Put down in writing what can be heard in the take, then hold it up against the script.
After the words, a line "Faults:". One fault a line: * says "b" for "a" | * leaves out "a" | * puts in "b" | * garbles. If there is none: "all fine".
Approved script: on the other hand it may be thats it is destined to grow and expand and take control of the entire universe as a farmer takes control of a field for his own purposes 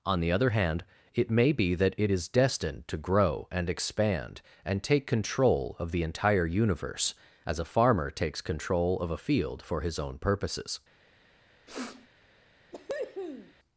on the other hand it may be that it is destined to grow and expand and take control of the entire universe as a farmer takes control of a field for his own purposes
Faults:
* says "that" for "thats"